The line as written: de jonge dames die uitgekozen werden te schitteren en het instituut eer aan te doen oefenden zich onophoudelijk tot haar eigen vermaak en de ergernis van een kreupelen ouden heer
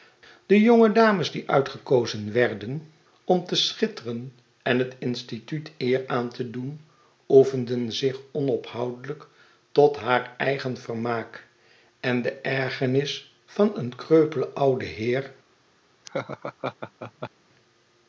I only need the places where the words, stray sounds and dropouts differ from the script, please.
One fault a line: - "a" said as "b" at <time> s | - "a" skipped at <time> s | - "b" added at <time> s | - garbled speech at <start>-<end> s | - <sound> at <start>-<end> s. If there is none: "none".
- "om" added at 3.2 s
- laugh at 16.0-17.3 s